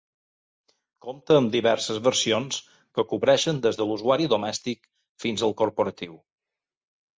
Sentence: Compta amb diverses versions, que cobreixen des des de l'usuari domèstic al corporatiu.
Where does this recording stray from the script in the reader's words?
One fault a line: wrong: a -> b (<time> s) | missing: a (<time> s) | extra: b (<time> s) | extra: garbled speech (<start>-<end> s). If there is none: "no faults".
missing: des (3.8 s)
extra: fins (5.3 s)